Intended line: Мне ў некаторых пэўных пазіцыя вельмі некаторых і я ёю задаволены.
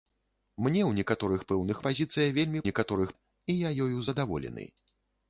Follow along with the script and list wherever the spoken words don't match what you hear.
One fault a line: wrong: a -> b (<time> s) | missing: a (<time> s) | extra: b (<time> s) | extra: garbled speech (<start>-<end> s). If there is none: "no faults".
no faults